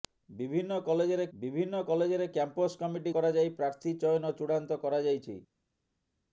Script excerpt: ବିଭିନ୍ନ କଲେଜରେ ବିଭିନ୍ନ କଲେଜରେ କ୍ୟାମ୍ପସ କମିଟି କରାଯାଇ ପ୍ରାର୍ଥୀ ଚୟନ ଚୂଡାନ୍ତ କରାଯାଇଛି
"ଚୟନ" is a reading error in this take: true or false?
false